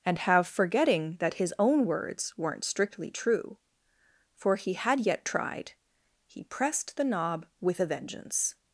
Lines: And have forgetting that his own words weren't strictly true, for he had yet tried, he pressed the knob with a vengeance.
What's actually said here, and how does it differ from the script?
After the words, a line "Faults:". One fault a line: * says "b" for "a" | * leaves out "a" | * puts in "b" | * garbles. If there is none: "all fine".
And have forgetting that his own words weren't strictly true, for he had yet tried, he pressed the knob with a vengeance.
Faults:
all fine